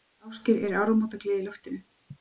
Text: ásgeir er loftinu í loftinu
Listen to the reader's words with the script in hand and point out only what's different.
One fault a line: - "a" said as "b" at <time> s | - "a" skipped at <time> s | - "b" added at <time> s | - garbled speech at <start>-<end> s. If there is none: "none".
- "loftinu" said as "áramótagleði" at 0.8 s